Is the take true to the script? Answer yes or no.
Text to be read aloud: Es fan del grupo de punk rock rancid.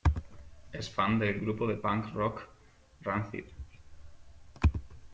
yes